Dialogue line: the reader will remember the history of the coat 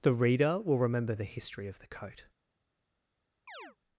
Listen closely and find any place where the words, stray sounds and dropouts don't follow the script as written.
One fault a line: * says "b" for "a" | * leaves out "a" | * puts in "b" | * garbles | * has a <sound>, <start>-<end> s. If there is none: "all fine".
* has a chirp, 3.5-3.8 s